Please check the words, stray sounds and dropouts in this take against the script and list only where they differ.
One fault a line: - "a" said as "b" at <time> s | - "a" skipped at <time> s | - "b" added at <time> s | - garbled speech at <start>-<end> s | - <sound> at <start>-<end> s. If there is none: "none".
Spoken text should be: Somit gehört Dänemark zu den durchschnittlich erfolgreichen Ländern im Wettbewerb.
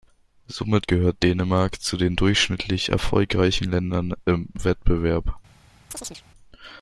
- chirp at 5.9-6.2 s